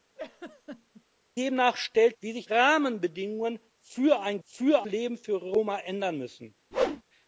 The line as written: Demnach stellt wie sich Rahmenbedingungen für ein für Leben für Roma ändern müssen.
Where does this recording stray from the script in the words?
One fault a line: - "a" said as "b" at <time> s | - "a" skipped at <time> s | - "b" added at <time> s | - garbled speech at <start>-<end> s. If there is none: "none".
none